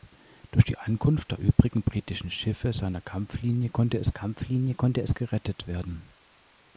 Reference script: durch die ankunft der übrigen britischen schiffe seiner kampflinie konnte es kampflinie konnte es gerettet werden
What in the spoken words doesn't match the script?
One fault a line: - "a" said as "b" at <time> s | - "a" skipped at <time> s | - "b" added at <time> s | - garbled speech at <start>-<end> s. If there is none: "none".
none